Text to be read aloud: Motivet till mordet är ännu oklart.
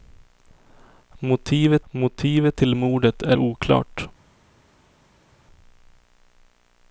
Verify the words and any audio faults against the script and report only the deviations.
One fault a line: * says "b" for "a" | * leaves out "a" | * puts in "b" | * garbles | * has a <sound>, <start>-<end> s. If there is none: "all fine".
* puts in "motivet"
* leaves out "ännu"